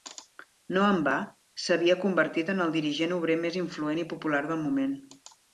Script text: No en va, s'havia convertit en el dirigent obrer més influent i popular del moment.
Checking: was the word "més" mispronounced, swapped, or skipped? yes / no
no